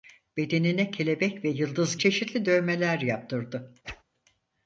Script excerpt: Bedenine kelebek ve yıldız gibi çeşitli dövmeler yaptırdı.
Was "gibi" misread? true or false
true